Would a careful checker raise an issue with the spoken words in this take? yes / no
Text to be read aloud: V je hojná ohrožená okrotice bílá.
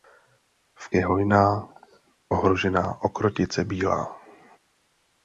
no